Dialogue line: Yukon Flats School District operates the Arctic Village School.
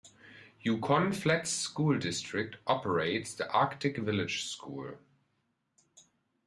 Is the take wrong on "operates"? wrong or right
right